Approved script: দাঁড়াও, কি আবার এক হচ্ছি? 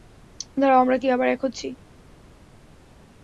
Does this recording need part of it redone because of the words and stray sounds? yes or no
yes